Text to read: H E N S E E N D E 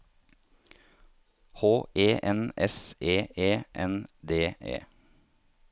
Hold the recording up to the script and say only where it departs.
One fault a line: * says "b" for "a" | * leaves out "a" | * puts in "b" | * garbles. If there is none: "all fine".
all fine